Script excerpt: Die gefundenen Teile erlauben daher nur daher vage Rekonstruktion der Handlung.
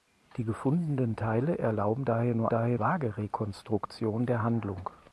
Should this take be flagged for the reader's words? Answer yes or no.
no